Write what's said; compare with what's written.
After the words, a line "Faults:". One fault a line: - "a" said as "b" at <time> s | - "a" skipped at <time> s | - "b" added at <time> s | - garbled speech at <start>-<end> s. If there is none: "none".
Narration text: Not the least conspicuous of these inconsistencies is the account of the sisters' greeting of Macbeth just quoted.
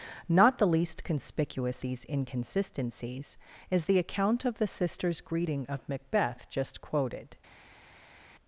Not the least conspicuous these inconsistencies is the account of the sisters' greeting of Macbeth just quoted.
Faults:
- "of" skipped at 1.8 s